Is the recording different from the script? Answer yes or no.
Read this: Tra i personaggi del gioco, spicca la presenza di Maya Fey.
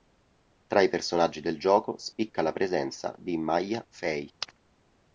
no